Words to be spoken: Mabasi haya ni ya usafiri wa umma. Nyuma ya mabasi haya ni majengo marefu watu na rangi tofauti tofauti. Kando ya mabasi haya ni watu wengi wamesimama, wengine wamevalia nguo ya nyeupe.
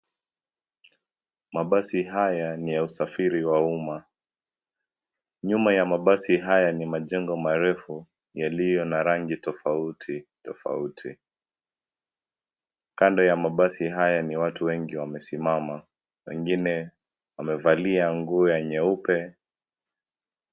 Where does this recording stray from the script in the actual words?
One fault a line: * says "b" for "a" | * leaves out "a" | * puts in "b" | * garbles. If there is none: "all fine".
* says "yaliyo" for "watu"